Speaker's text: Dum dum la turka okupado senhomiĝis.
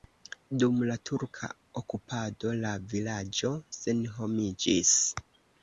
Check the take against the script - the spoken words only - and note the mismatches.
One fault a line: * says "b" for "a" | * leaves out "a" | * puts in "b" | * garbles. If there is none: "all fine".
* leaves out "dum"
* puts in "la vilaĝo"